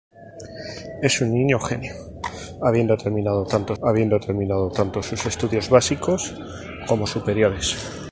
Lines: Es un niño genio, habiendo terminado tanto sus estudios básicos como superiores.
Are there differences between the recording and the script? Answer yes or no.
yes